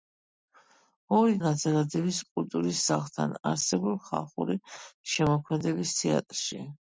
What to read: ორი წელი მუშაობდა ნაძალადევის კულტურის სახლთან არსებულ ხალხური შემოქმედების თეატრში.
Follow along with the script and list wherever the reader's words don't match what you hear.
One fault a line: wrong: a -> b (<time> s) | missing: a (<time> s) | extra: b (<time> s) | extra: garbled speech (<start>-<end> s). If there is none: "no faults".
missing: წელი მუშაობდა (1.4 s)